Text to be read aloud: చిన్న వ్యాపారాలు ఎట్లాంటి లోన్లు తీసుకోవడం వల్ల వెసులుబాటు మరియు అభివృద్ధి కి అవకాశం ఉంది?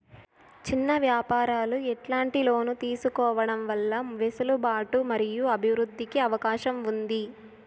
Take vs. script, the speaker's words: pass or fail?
pass